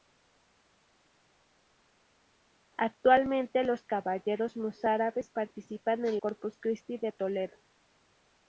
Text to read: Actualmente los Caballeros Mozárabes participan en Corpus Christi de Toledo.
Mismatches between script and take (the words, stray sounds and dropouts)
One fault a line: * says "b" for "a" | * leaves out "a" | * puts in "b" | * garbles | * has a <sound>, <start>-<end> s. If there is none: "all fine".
all fine